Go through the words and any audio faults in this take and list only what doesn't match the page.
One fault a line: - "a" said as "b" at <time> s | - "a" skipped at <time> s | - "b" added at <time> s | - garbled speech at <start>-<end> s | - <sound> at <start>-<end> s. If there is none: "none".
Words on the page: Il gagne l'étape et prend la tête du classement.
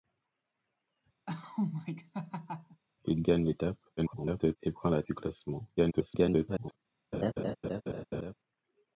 - laugh at 1.3-2.8 s
- garbled speech at 4.0-4.6 s
- "tête" skipped at 5.0 s
- garbled speech at 5.8-6.8 s
- laugh at 7.1-8.3 s